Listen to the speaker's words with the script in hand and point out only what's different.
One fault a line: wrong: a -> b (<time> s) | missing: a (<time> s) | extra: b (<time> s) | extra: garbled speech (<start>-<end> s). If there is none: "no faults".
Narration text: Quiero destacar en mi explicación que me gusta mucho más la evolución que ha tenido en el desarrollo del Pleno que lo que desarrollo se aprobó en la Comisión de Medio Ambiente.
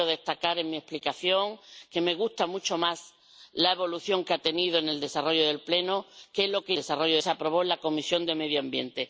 no faults